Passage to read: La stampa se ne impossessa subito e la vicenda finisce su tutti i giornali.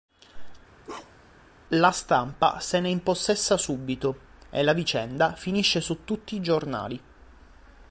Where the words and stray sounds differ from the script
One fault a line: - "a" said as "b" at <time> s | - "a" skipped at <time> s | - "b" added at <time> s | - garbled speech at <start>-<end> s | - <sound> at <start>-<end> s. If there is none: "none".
- bark at 0.8-1.4 s